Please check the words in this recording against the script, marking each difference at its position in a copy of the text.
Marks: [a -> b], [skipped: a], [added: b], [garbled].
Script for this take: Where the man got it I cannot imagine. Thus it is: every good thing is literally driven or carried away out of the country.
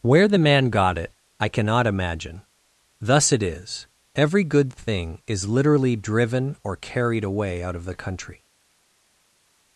Where the man got it I cannot imagine. Thus it is: every good thing is literally driven or carried away out of the country.